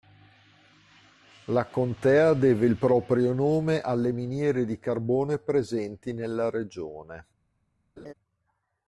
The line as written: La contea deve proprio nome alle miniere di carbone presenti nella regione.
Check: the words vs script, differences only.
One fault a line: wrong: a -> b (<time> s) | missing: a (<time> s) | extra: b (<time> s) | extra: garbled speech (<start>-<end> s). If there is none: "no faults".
extra: il (2.6 s)